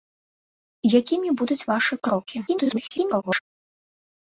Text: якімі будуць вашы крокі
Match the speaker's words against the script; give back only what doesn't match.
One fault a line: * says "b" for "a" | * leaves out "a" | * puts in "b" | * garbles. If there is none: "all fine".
* garbles